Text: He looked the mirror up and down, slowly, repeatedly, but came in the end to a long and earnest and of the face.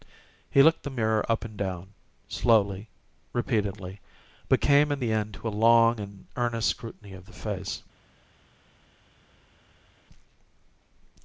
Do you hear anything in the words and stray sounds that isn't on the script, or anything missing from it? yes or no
yes